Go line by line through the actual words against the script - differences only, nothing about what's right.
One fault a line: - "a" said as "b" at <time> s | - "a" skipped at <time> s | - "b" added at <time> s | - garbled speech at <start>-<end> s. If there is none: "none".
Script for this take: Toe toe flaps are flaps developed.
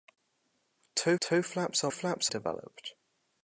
none